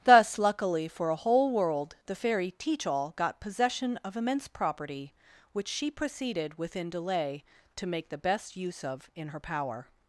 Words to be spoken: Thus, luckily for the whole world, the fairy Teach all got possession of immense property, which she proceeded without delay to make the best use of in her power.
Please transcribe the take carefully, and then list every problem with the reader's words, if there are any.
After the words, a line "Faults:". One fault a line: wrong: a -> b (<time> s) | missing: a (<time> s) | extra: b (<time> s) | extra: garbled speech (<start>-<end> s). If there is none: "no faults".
Thus, luckily for a whole world, the fairy Teach all got possession of immense property, which she proceeded within delay to make the best use of in her power.
Faults:
wrong: the -> a (1.1 s)
wrong: without -> within (6.6 s)